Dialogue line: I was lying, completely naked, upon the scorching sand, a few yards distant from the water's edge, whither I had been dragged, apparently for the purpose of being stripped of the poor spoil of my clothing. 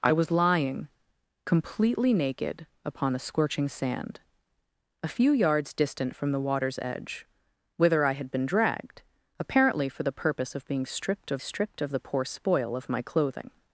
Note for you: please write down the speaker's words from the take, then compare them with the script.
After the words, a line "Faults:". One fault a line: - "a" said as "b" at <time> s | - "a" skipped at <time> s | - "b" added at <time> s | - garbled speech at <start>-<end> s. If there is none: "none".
I was lying, completely naked, upon the scorching sand, a few yards distant from the water's edge, whither I had been dragged, apparently for the purpose of being stripped of stripped of the poor spoil of my clothing.
Faults:
- "stripped of" added at 11.4 s